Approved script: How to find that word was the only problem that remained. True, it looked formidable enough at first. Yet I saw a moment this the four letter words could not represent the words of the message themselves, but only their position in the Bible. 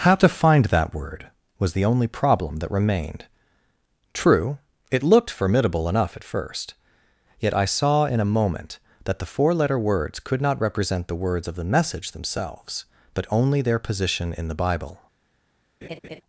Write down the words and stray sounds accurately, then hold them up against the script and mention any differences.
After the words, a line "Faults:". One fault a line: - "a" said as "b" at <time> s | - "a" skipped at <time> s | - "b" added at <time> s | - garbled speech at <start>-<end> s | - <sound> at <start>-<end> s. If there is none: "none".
How to find that word was the only problem that remained. True, it looked formidable enough at first. Yet I saw in a moment that the four letter words could not represent the words of the message themselves, but only their position in the Bible.
Faults:
- "in" added at 8.1 s
- "this" said as "that" at 9.0 s
- laugh at 15.8-16.2 s